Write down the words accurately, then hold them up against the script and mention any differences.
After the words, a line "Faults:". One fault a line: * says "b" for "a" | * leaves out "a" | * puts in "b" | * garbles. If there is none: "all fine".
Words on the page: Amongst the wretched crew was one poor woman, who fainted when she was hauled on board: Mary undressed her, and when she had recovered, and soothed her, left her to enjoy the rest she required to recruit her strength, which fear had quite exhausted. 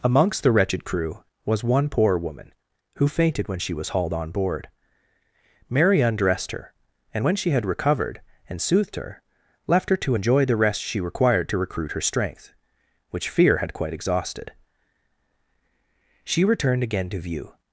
Amongst the wretched crew was one poor woman, who fainted when she was hauled on board: Mary undressed her, and when she had recovered, and soothed her, left her to enjoy the rest she required to recruit her strength, which fear had quite exhausted. She returned again to view
Faults:
* puts in "She returned again to view"